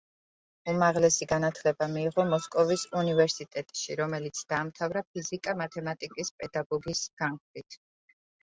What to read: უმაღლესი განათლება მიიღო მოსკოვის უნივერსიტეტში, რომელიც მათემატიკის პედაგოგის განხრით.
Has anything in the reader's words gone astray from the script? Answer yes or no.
yes